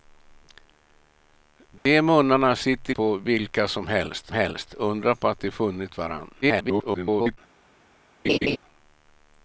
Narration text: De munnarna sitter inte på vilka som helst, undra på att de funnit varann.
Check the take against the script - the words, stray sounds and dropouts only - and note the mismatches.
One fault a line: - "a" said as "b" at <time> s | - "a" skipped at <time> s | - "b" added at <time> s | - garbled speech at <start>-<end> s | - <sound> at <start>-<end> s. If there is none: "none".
- dropout at 1.8-1.9 s
- "inte" skipped at 2.9 s
- "helst" added at 4.3 s
- garbled speech at 6.4-7.4 s
- laugh at 8.2-8.6 s